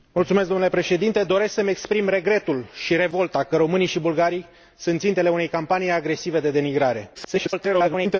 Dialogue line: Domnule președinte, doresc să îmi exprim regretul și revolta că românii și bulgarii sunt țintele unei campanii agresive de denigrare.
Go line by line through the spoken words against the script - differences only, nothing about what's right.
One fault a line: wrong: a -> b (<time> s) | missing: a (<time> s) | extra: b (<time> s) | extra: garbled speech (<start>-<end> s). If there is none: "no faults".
extra: garbled speech (7.1-8.2 s)